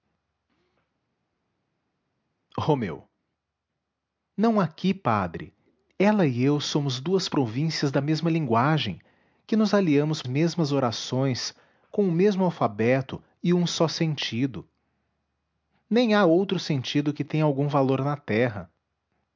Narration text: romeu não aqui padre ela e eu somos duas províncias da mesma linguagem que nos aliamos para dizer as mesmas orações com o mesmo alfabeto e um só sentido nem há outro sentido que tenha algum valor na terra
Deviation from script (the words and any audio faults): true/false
true